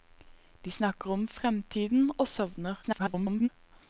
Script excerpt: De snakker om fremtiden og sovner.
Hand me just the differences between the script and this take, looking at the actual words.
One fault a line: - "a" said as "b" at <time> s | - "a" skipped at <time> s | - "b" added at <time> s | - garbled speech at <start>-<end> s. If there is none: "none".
- garbled speech at 2.8-3.5 s